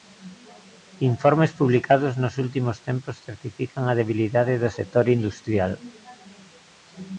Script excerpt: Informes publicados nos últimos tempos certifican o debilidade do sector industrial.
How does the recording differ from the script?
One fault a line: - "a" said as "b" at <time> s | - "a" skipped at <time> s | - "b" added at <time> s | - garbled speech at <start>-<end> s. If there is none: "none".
- "o" said as "a" at 3.9 s